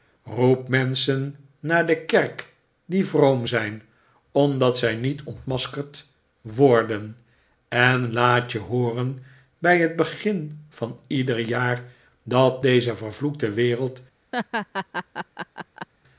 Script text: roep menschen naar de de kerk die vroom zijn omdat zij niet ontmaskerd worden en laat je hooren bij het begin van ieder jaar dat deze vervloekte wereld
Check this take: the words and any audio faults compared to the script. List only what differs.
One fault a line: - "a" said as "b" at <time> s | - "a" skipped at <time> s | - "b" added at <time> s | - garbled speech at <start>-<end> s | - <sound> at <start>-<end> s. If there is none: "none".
- "de" skipped at 2.0 s
- laugh at 14.3-15.9 s